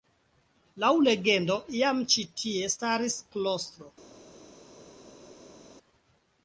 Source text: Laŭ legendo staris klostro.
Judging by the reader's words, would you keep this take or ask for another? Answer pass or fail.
fail